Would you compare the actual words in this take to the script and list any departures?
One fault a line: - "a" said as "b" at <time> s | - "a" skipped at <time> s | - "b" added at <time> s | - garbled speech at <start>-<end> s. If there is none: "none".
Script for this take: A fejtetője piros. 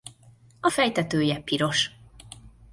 none